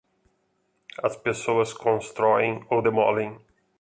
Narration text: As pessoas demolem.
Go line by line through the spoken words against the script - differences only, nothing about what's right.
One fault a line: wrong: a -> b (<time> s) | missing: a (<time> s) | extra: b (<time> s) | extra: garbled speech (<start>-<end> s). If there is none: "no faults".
extra: constroem ou (1.7 s)